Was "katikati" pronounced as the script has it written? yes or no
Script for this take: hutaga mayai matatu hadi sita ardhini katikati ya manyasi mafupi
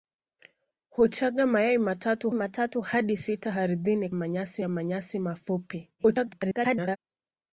no